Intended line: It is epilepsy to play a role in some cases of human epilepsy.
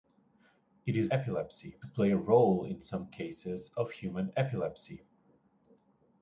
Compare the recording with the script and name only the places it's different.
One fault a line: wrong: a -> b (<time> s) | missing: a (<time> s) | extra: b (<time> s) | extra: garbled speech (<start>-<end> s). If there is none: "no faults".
no faults